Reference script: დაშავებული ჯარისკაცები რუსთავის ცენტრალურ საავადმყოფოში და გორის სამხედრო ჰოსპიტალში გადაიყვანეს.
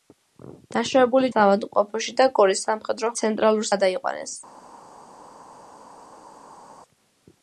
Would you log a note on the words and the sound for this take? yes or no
yes